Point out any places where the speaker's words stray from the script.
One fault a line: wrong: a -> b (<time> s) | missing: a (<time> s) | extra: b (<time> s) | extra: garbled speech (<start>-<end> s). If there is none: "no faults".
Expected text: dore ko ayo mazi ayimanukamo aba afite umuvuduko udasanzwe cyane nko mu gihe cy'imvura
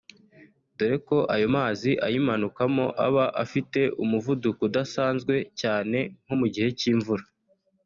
no faults